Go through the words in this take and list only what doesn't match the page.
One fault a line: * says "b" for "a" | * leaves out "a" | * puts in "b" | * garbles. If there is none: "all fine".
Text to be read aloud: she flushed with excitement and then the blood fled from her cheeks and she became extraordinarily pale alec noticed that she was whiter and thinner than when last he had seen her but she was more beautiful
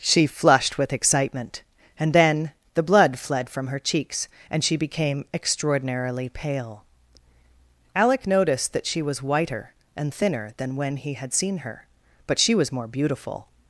* leaves out "last"